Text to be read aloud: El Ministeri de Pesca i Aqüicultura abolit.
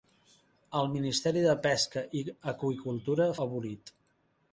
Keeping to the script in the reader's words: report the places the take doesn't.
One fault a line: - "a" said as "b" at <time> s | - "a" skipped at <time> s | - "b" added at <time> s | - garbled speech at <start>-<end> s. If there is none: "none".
none